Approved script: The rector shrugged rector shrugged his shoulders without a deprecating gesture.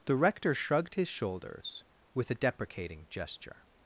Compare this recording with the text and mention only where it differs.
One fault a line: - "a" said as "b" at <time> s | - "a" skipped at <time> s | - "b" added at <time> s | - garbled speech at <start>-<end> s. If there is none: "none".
- "rector shrugged" skipped at 0.9 s
- "without" said as "with" at 2.1 s